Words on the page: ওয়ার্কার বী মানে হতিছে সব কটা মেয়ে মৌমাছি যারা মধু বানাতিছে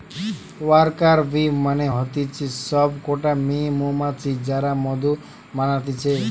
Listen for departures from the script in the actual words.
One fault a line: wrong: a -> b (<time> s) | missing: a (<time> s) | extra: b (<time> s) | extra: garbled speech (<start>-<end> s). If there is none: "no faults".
no faults